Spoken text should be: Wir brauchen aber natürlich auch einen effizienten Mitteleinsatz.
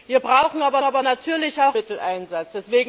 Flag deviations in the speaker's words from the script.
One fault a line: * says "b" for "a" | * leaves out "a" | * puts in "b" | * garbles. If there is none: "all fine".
* puts in "aber"
* leaves out "einen effizienten"